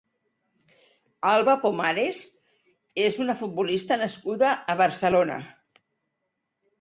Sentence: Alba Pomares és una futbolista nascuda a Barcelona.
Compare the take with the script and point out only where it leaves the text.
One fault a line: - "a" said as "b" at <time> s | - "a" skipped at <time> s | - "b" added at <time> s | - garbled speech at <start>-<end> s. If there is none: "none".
none